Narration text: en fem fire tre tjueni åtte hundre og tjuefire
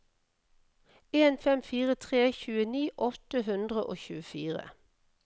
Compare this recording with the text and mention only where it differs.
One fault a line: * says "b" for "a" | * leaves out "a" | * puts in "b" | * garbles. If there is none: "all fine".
all fine